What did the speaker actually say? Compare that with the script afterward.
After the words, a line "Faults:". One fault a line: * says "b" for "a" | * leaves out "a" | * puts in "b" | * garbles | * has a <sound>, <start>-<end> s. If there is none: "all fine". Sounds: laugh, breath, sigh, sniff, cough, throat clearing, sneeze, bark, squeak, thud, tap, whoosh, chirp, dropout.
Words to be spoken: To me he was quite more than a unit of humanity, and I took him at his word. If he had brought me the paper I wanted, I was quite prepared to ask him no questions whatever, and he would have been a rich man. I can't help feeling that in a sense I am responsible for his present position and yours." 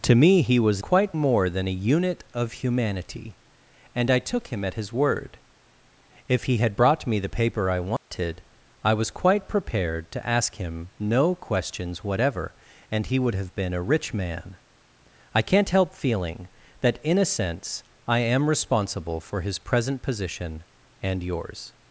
To me he was quite more than a unit of humanity, and I took him at his word. If he had brought me the paper I wanted, I was quite prepared to ask him no questions whatever, and he would have been a rich man. I can't help feeling that in a sense I am responsible for his present position and yours."
Faults:
* has a dropout, 8.0-8.1 s